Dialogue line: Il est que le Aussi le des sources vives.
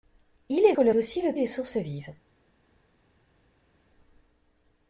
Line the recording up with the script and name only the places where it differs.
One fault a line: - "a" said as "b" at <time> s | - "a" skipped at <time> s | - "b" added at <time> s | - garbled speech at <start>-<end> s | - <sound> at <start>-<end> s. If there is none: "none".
none